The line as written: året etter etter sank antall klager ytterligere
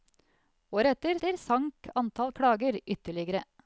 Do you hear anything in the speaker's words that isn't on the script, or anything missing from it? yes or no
no